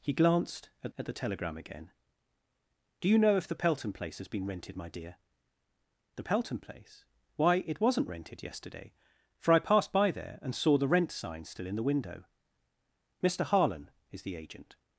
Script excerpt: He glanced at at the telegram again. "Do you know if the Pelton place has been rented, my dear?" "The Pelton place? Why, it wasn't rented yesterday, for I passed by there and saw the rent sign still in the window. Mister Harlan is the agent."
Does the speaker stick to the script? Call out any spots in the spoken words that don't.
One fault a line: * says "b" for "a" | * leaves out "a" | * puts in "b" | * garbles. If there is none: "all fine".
all fine